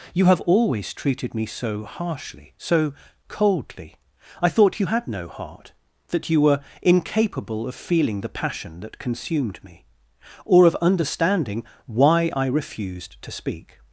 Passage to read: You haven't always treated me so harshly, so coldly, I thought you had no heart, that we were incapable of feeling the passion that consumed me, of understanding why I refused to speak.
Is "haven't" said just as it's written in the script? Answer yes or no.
no